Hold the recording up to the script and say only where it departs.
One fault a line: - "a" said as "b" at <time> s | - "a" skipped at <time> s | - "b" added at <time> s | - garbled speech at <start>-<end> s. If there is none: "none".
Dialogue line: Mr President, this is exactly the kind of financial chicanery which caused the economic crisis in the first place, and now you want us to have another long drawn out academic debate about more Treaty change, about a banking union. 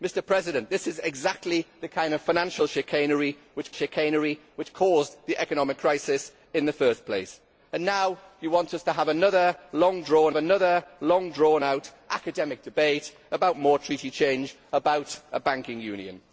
- "chicanery which" added at 3.7 s
- "another long drawn" added at 10.3 s